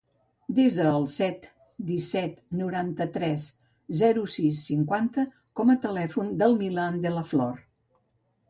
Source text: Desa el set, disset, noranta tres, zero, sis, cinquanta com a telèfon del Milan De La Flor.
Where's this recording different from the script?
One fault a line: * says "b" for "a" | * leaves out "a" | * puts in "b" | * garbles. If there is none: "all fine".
all fine